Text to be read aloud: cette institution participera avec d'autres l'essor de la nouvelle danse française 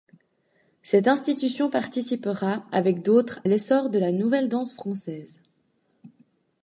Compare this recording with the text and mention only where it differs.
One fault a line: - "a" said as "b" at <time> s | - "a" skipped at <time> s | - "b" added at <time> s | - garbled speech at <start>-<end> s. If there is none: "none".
none